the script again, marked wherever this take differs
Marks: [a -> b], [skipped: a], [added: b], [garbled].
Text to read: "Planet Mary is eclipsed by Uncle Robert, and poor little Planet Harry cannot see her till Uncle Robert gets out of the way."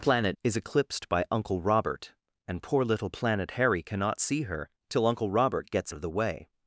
"Planet [skipped: Mary] is eclipsed by Uncle Robert, and poor little Planet Harry cannot see her till Uncle Robert gets [skipped: out] of the way."